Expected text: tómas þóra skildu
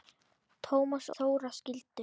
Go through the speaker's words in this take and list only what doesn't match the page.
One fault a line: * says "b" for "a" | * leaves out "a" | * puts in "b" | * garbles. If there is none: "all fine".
all fine